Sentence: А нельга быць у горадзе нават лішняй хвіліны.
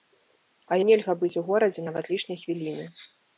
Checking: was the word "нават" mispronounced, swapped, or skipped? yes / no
no